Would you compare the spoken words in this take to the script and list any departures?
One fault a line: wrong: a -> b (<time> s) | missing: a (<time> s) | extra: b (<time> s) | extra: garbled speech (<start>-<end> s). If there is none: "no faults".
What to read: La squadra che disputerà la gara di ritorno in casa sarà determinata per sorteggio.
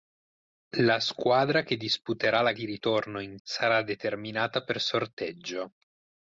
missing: gara (2.5 s)
missing: casa (3.4 s)